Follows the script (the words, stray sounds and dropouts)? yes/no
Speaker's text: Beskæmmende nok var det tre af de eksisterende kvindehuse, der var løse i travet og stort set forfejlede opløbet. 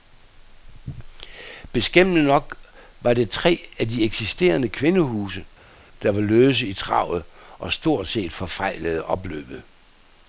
yes